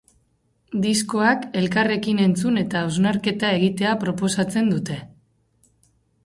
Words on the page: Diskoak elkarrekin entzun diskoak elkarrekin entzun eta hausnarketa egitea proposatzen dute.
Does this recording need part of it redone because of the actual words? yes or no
yes